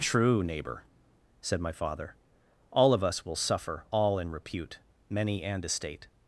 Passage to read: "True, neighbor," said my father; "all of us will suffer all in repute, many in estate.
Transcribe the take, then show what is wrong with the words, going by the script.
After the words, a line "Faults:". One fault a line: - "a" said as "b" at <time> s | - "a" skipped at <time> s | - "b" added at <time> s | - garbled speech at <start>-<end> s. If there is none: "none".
"True, neighbor," said my father; "all of us will suffer all in repute, many and estate.
Faults:
- "in" said as "and" at 5.4 s